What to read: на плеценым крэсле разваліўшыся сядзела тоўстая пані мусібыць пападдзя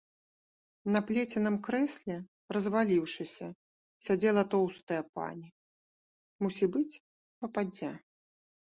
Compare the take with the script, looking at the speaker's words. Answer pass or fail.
pass